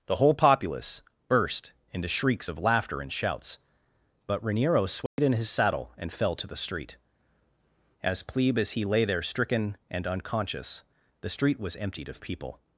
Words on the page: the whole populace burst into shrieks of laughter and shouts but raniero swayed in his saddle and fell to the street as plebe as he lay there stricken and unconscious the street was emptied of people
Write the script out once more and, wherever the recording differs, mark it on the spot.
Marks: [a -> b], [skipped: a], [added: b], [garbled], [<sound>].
the whole populace burst into shrieks of laughter and shouts but raniero swayed [dropout] in his saddle and fell to the street as plebe as he lay there stricken and unconscious the street was emptied of people